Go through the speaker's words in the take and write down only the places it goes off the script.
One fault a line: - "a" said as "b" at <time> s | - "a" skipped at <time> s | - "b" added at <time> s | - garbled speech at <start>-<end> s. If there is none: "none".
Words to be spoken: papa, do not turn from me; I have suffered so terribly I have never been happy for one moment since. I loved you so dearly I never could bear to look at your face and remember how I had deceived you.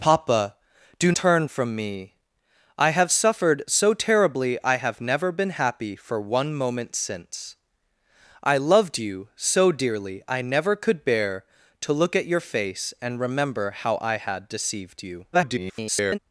- "not" skipped at 1.1 s
- garbled speech at 15.3-16.2 s